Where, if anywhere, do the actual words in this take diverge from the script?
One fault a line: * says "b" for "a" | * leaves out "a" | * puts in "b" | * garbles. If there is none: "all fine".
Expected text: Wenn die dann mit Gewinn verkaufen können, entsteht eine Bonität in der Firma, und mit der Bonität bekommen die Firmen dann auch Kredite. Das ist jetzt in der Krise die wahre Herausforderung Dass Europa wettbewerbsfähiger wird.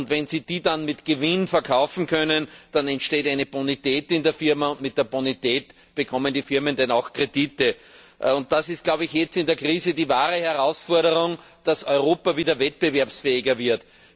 * puts in "sie"
* puts in "dann"
* puts in "wieder"